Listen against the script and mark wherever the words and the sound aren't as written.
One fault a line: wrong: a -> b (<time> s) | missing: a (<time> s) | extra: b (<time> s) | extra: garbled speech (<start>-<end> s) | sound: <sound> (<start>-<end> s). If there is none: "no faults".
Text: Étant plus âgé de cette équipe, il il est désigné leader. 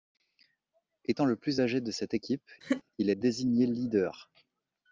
extra: le (1.2 s)
sound: laugh (2.6-2.8 s)
missing: il (3.1 s)